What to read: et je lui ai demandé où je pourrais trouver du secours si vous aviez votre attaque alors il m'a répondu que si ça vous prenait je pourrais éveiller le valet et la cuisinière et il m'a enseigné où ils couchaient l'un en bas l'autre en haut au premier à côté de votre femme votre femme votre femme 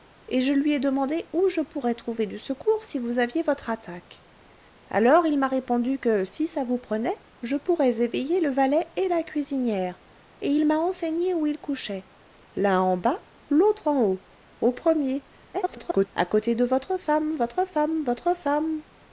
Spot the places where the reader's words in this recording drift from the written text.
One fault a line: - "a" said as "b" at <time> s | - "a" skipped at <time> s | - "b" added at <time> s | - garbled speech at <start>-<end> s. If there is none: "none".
- garbled speech at 15.5-16.1 s